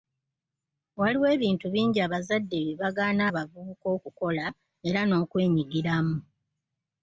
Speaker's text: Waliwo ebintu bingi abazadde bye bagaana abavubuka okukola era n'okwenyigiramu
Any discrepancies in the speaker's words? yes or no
no